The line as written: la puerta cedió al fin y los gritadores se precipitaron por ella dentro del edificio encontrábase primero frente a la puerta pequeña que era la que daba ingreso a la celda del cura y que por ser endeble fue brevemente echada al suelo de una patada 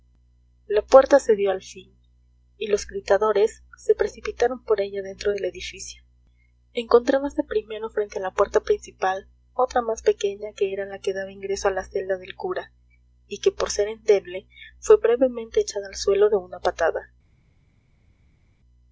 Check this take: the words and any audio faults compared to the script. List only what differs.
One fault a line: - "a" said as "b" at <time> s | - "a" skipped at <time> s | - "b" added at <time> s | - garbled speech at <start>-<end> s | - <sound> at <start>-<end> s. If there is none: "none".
- "principal otra más" added at 8.6 s